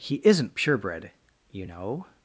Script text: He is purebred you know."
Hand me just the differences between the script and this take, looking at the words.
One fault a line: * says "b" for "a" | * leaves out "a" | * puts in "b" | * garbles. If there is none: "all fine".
* says "isn't" for "is"